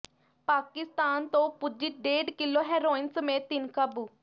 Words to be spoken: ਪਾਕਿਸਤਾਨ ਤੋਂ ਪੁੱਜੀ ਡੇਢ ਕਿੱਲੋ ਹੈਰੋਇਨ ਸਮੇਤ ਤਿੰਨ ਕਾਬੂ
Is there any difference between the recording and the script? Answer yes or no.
no